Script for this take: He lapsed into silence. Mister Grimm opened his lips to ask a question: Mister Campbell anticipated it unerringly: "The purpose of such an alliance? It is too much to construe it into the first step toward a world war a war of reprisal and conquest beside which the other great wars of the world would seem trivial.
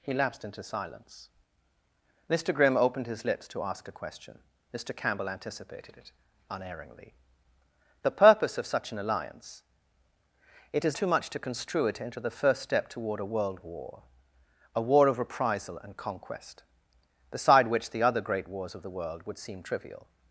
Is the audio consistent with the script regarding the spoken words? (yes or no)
yes